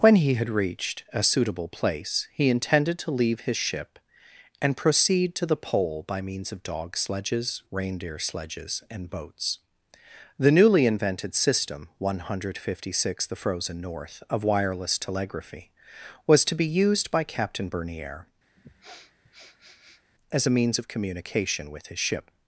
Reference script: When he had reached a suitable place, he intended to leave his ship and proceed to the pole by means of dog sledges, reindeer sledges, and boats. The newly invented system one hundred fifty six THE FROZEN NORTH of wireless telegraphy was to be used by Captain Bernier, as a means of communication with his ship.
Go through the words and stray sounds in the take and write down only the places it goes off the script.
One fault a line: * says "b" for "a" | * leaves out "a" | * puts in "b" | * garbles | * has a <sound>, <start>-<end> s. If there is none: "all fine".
* has a sniff, 18.6-20.0 s